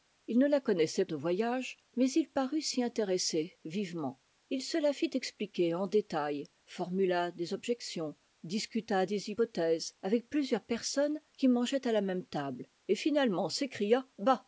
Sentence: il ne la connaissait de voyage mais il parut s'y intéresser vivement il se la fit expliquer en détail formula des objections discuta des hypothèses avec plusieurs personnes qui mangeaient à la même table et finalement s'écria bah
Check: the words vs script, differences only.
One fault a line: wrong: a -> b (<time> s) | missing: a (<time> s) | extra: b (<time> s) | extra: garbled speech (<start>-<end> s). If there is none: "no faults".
no faults